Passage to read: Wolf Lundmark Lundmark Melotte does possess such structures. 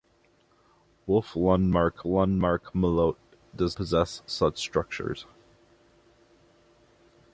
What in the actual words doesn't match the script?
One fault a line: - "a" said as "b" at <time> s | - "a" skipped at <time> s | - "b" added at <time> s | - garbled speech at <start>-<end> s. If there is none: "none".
none